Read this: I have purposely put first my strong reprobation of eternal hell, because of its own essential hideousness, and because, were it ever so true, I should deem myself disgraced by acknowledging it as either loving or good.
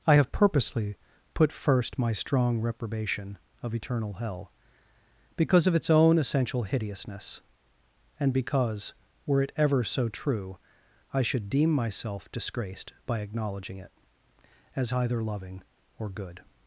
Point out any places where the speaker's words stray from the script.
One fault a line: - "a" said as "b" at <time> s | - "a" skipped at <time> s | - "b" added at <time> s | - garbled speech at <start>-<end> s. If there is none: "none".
none